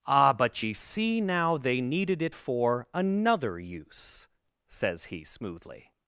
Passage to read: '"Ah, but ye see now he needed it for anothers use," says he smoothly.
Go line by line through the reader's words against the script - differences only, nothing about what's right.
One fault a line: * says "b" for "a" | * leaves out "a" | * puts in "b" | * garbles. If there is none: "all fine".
* says "they" for "he"
* says "another" for "anothers"